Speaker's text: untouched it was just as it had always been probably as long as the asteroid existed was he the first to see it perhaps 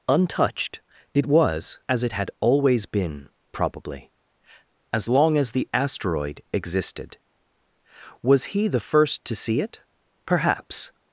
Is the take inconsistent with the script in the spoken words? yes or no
yes